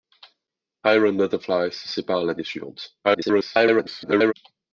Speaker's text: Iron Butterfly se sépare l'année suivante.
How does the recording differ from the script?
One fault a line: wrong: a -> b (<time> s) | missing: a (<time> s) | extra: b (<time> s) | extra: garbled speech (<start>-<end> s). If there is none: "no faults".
extra: garbled speech (3.0-4.3 s)